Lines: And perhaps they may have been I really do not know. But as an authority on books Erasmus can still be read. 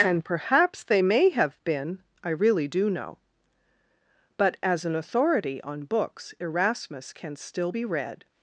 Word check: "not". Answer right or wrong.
wrong